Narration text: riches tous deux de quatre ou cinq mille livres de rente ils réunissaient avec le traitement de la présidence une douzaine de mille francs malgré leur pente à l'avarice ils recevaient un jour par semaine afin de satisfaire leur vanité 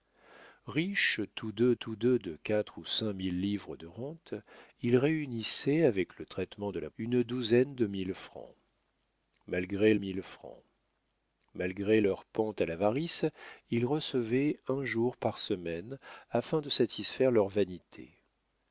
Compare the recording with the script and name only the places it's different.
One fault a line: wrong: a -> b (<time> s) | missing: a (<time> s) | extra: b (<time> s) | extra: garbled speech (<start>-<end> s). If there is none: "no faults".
extra: tous deux (1.8 s)
missing: présidence (6.9 s)
extra: mille francs malgré (10.0 s)